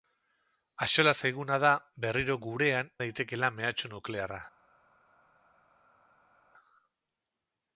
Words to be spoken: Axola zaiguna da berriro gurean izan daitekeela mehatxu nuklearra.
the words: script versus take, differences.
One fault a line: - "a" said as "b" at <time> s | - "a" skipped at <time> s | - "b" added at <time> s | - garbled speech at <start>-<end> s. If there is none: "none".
- "izan" skipped at 2.9 s